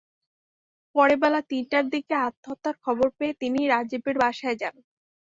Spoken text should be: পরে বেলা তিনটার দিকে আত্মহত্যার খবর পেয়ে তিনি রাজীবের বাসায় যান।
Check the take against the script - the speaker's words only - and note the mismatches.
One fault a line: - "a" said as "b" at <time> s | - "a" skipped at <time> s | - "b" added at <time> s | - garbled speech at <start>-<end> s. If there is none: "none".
none